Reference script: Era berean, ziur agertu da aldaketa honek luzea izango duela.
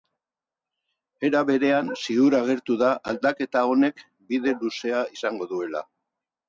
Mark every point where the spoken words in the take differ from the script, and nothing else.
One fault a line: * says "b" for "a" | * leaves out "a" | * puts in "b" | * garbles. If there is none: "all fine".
* puts in "bide"